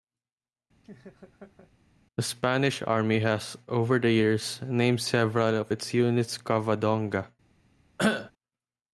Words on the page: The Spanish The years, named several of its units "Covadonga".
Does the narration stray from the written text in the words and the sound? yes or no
yes